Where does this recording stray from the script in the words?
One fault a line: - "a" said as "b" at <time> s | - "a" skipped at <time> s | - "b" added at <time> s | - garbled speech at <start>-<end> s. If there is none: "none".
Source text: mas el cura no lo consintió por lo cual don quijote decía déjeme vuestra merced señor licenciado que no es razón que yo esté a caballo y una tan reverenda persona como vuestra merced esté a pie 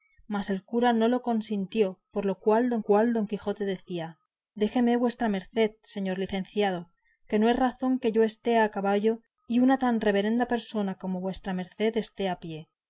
- "cual don" added at 2.8 s